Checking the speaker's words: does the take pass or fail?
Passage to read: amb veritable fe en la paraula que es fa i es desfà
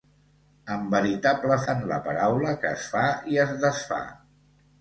fail